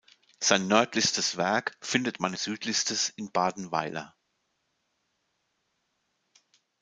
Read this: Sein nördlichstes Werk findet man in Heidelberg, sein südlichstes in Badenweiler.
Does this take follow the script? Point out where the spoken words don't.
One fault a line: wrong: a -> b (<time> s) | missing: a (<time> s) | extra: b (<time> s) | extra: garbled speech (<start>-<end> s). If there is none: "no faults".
missing: in Heidelberg sein (2.3 s)